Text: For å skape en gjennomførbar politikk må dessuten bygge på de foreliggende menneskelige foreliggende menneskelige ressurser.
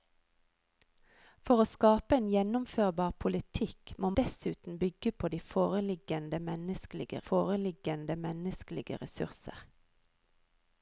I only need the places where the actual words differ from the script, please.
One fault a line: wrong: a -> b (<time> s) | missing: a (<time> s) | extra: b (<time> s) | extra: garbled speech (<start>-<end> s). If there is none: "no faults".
no faults